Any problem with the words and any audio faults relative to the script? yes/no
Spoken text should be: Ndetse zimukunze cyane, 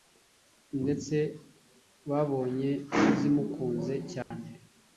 yes